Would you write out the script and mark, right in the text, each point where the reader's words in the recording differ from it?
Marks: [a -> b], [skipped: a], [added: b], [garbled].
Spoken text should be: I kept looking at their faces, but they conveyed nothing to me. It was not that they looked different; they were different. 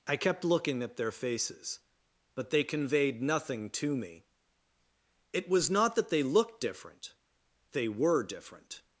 I kept looking at their faces, but they conveyed nothing to me. It was not that they looked different; they were different.